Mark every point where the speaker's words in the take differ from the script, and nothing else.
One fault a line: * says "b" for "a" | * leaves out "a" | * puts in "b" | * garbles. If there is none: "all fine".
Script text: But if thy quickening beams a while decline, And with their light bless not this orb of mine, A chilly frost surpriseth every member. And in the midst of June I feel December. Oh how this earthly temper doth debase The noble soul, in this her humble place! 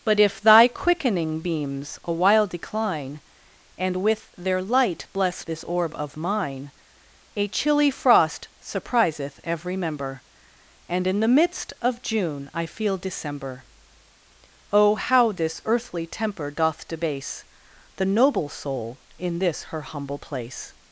* leaves out "not"